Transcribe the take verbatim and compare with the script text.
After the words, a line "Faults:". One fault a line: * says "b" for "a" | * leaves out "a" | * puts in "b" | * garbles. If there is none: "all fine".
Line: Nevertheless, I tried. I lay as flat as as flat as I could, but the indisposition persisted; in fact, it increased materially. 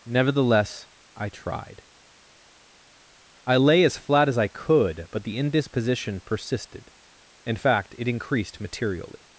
Nevertheless, I tried. I lay as flat as I could, but the indisposition persisted; in fact, it increased materially.
Faults:
* leaves out "as flat as"